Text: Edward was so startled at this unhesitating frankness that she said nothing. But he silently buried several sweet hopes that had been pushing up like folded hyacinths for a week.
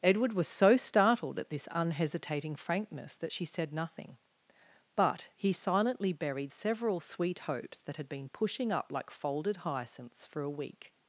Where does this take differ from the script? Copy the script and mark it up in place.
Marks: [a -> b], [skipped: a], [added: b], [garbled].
Edward was so startled at this unhesitating frankness that she said nothing. But he silently buried several sweet hopes that had been pushing up like folded hyacinths for a week.